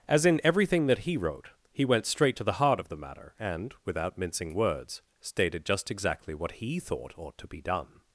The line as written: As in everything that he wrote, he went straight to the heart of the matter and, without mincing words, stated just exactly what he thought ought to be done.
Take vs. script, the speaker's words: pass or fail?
pass